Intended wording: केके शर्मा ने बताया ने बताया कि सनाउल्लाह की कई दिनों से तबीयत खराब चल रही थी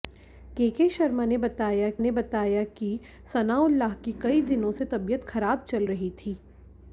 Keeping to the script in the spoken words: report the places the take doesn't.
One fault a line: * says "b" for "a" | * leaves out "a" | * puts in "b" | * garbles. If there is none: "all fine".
all fine